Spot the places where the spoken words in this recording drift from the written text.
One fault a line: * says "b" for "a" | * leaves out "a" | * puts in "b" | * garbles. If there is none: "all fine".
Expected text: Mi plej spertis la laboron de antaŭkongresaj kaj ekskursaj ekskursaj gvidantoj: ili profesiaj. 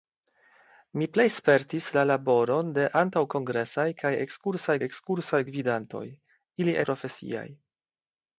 all fine